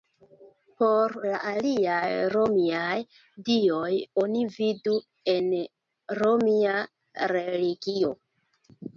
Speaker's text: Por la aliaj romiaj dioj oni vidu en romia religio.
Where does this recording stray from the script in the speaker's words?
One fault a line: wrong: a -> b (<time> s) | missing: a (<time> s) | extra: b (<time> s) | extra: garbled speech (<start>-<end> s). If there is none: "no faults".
no faults